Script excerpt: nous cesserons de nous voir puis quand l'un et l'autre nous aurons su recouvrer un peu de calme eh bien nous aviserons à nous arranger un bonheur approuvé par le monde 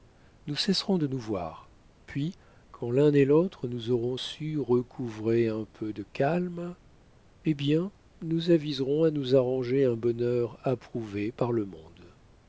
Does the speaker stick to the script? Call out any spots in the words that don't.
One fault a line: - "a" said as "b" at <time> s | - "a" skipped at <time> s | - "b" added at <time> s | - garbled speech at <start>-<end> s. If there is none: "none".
none